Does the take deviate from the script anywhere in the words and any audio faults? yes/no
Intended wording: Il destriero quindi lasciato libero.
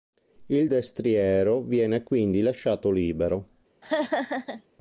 yes